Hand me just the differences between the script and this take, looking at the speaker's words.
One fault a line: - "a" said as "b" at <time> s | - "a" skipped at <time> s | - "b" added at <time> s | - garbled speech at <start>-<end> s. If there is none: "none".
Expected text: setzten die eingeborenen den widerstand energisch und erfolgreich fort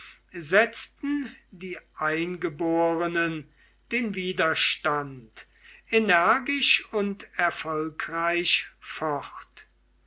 none